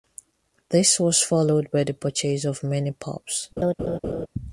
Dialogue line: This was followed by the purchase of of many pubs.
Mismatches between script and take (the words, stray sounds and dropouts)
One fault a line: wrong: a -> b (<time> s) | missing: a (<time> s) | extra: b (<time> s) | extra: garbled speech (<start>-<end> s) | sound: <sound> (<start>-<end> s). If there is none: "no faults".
missing: of (2.6 s)
sound: laugh (3.6-4.3 s)